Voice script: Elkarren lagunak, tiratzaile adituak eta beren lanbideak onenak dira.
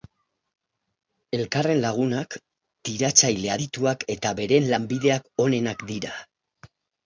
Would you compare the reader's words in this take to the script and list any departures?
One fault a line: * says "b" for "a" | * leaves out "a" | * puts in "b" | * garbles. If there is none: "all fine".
all fine